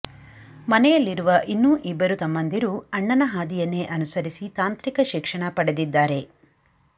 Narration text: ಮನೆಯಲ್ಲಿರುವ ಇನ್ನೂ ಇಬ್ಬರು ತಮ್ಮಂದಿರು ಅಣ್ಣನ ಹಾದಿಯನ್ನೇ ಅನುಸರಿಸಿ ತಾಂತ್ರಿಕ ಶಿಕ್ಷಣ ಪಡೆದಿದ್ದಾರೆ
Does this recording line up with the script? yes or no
yes